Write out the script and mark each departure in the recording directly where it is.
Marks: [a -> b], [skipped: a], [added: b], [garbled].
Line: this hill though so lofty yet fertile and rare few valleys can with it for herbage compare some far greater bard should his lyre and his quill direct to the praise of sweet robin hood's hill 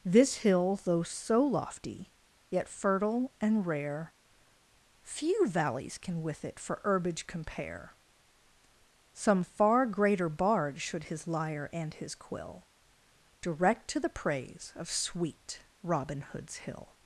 this hill though so lofty yet fertile and rare few valleys can with it for herbage compare some far greater bard should his lyre and his quill direct to the praise of sweet robin hood's hill